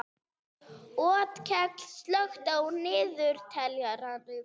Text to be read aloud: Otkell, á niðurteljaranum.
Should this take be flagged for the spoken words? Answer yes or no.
yes